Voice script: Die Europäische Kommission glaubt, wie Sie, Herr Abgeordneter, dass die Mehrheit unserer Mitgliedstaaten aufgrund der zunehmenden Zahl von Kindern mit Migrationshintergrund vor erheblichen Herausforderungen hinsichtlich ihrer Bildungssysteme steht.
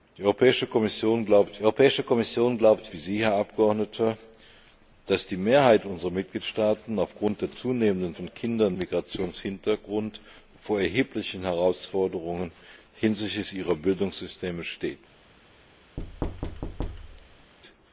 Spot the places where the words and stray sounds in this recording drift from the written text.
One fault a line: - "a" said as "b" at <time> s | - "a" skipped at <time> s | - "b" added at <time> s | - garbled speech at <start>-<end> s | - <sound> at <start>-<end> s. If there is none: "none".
- "Europäische Kommission glaubt" added at 1.6 s
- "Zahl" skipped at 8.1 s
- "mit" skipped at 8.8 s
- thud at 16.0-17.5 s